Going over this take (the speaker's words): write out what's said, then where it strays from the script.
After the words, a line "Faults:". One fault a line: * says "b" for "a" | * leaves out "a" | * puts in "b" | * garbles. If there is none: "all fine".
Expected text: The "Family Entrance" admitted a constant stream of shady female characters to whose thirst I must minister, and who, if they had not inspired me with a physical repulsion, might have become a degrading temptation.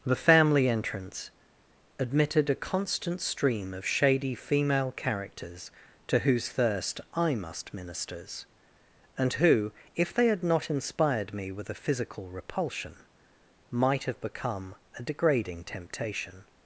The "Family Entrance" admitted a constant stream of shady female characters to whose thirst I must ministers, and who, if they had not inspired me with a physical repulsion, might have become a degrading temptation.
Faults:
* says "ministers" for "minister"